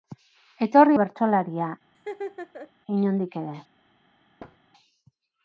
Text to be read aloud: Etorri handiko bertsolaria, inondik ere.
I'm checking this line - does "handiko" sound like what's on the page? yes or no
no